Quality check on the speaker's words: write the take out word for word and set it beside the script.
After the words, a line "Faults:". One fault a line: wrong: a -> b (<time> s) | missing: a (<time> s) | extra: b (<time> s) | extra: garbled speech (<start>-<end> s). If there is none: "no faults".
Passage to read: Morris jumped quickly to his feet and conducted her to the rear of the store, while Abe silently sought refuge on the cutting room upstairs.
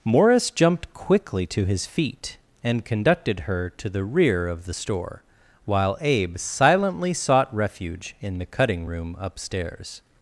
Morris jumped quickly to his feet and conducted her to the rear of the store, while Abe silently sought refuge in the cutting room upstairs.
Faults:
wrong: on -> in (8.2 s)